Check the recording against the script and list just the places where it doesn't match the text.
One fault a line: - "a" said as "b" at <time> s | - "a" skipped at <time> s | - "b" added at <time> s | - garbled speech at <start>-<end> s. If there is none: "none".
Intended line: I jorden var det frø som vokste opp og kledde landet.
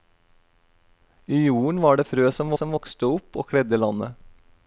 - "som" added at 2.6 s